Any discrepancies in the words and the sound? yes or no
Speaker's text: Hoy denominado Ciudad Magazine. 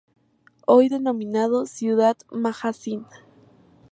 no